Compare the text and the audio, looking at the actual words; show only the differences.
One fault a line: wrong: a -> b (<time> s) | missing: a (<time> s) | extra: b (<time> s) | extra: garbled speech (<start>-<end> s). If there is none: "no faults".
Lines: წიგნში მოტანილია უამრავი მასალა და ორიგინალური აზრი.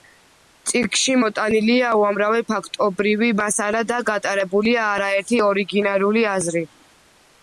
extra: ფაქტობრივი (2.5 s)
extra: გატარებულია არაერთი (4.1 s)